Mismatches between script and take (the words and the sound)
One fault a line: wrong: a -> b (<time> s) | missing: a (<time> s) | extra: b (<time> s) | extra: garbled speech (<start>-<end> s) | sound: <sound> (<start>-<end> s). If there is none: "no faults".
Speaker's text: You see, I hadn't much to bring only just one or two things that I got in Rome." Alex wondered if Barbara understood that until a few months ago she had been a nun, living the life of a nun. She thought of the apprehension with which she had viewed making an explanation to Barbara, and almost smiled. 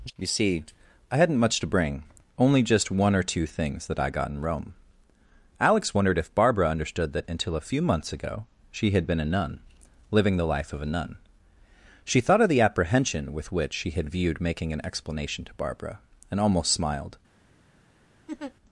sound: laugh (18.3-18.5 s)